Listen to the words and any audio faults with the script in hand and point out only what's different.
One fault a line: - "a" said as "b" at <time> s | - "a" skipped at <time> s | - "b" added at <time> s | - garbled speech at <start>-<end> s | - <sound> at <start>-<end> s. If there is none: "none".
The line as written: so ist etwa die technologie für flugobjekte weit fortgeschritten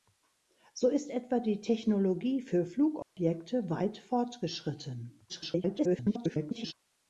- dropout at 3.0-3.2 s
- garbled speech at 5.3-6.7 s